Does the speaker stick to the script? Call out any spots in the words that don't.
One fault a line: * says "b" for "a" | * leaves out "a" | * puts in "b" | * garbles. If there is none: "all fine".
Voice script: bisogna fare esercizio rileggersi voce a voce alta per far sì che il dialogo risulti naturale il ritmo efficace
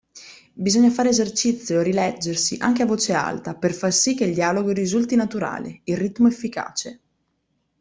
* says "anche" for "voce"